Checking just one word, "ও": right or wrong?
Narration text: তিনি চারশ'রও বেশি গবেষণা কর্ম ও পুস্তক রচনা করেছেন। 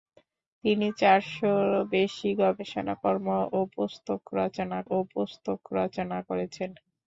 right